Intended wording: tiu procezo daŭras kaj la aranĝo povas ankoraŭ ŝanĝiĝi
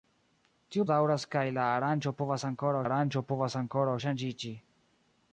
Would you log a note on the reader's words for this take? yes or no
yes